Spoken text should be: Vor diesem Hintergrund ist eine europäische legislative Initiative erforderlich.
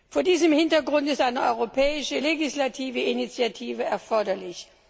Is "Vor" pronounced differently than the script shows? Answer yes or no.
no